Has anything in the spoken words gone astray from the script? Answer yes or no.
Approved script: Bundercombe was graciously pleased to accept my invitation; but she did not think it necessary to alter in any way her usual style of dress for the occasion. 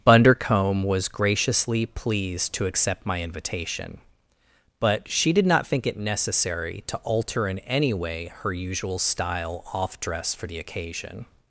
yes